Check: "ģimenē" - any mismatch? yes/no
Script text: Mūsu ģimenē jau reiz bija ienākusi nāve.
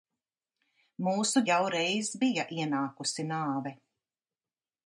yes